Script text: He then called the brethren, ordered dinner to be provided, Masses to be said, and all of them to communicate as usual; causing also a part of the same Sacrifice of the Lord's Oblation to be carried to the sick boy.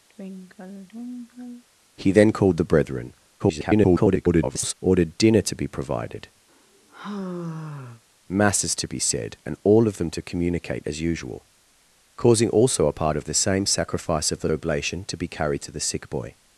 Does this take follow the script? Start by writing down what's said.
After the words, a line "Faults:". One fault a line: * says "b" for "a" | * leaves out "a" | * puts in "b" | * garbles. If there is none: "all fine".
He then called the brethren, [garbled] ordered dinner to be provided, Masses to be said, and all of them to communicate as usual; causing also a part of the same Sacrifice of the Oblation to be carried to the sick boy.
Faults:
* garbles
* leaves out "Lord's"